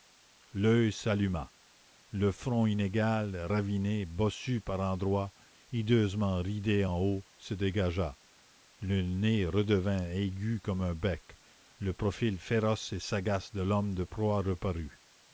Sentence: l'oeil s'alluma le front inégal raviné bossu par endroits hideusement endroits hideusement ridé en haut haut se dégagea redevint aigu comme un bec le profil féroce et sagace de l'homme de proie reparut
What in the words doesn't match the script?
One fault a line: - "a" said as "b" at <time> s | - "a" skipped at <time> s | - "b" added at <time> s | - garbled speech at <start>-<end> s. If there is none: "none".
- "endroits hideusement" skipped at 6.4 s
- "haut" skipped at 7.2 s
- "le nez" added at 8.8 s